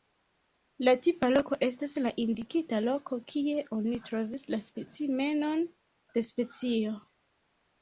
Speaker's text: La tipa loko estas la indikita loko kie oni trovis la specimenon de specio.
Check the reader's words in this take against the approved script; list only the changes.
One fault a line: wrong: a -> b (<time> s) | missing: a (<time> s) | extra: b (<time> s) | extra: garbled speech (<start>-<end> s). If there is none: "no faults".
no faults